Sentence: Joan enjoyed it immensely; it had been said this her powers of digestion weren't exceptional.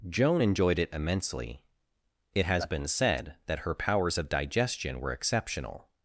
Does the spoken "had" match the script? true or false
false